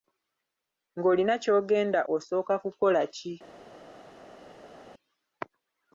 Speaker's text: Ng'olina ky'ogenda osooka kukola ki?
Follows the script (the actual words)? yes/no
yes